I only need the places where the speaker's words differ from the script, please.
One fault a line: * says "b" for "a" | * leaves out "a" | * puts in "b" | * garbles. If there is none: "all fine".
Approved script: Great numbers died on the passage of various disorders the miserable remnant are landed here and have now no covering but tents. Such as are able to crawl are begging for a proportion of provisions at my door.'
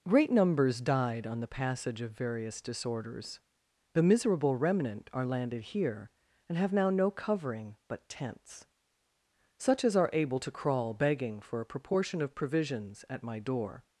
* leaves out "are"